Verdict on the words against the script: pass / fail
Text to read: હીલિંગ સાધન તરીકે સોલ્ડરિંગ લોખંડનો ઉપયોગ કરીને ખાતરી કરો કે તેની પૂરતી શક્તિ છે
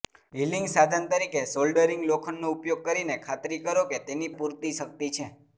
pass